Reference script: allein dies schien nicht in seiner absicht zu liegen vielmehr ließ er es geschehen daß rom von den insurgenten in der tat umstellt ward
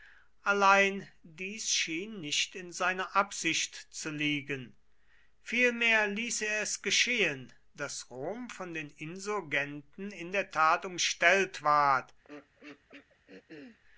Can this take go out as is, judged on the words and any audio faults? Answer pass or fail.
fail